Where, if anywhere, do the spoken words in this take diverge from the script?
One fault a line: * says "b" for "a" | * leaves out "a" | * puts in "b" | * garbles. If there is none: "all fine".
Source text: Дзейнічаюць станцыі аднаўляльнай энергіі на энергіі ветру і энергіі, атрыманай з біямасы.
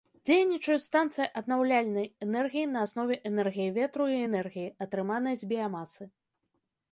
* puts in "аснове"